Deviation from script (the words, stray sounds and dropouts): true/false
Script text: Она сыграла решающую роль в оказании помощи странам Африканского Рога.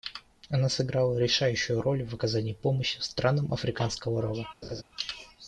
true